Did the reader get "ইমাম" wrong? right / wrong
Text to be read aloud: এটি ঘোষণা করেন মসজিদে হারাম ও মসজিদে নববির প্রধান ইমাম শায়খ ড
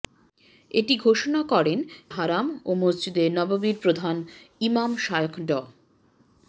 right